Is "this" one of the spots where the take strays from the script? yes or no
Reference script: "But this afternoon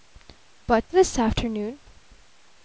no